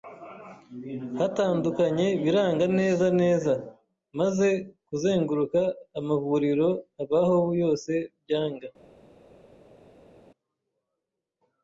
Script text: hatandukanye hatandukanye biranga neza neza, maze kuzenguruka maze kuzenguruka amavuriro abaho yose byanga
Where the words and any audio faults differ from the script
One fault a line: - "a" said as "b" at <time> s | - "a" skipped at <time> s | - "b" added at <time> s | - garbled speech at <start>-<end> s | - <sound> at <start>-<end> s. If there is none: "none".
- "hatandukanye" skipped at 2.1 s
- "maze kuzenguruka" skipped at 5.6 s